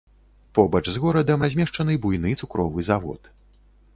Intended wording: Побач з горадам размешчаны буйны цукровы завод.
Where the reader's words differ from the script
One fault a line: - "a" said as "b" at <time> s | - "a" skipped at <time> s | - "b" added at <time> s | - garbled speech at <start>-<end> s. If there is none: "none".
none